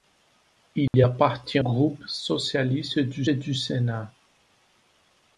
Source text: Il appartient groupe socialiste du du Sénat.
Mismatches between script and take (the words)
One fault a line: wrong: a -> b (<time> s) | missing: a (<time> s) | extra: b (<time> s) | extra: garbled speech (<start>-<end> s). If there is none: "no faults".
no faults